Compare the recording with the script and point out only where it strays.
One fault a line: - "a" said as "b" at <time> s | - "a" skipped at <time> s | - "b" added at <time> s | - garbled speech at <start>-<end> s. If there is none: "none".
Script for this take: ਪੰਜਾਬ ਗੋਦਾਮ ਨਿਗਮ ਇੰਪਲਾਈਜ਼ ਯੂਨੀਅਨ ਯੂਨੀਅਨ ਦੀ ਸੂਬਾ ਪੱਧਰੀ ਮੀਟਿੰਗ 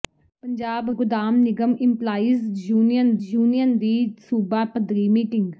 none